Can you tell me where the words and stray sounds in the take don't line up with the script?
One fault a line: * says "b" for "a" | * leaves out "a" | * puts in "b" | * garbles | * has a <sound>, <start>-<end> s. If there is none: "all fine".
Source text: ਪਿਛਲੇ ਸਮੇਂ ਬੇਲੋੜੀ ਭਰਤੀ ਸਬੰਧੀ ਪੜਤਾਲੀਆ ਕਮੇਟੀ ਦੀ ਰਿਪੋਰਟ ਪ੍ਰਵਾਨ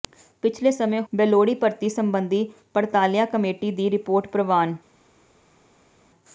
all fine